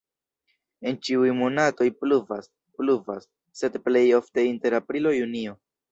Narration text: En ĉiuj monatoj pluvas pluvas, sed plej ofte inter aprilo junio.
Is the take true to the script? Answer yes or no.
yes